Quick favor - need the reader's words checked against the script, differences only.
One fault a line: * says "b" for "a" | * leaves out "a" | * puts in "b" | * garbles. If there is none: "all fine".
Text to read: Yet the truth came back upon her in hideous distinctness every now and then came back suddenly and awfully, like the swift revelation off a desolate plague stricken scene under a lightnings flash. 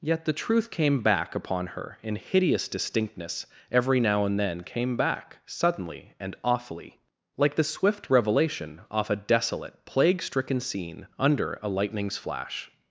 all fine